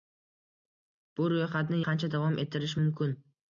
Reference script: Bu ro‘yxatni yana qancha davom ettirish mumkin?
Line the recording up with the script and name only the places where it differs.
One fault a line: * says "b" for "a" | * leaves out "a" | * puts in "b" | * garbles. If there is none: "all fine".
* leaves out "yana"